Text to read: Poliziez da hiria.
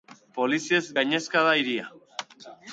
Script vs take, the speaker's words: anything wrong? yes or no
yes